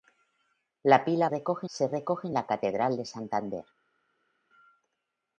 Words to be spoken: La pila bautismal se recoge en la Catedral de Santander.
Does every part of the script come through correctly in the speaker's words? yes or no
no